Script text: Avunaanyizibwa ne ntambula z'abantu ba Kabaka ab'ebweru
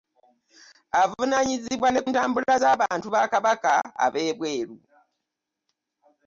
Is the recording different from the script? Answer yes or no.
no